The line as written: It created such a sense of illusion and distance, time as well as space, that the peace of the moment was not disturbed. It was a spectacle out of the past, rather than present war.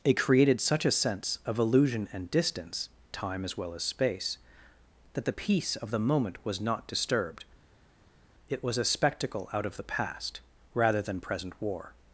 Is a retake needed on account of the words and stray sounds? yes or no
no